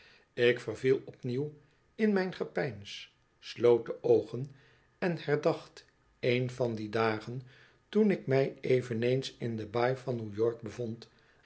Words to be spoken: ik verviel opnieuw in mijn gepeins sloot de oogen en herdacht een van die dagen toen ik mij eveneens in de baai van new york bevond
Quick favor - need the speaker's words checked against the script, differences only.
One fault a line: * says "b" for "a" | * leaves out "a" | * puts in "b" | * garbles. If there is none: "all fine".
all fine